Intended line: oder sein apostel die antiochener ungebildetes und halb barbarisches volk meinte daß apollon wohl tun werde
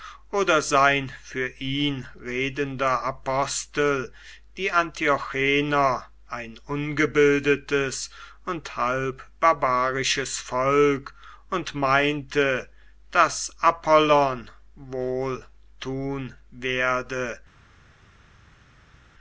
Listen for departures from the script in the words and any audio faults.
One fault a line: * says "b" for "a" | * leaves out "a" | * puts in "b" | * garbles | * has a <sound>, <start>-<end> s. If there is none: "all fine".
* puts in "für ihn redender"
* puts in "ein"
* puts in "und"